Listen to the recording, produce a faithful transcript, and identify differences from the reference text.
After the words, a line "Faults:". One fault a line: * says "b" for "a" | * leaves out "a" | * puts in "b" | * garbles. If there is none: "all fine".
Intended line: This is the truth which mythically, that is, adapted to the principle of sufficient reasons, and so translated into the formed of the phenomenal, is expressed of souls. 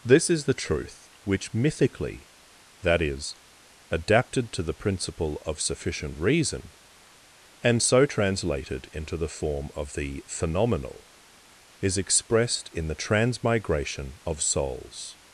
This is the truth which mythically, that is, adapted to the principle of sufficient reason, and so translated into the form of the phenomenal, is expressed in the transmigration of souls.
Faults:
* says "reason" for "reasons"
* says "form" for "formed"
* puts in "in the transmigration"